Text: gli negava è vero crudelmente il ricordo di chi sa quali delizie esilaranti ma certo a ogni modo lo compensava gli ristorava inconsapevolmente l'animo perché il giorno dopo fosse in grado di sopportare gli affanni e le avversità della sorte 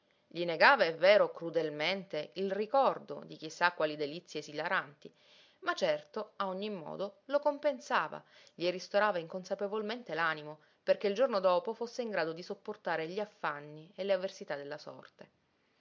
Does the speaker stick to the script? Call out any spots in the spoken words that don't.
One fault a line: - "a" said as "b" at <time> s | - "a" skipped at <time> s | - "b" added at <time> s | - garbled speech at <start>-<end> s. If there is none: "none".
none